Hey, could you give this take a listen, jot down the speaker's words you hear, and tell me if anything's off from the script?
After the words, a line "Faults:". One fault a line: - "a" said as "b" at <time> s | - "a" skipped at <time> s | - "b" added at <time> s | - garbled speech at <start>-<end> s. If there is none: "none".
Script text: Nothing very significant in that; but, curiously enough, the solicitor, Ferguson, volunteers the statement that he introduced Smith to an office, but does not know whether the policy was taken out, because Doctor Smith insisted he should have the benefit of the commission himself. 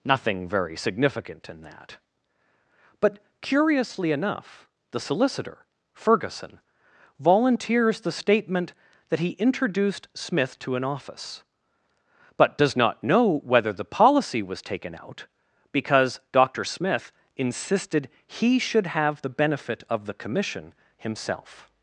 Nothing very significant in that; but, curiously enough, the solicitor, Ferguson, volunteers the statement that he introduced Smith to an office, but does not know whether the policy was taken out, because Doctor Smith insisted he should have the benefit of the commission himself.
Faults:
none